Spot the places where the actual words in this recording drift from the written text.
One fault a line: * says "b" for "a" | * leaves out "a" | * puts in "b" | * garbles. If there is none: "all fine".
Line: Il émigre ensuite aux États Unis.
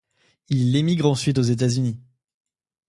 all fine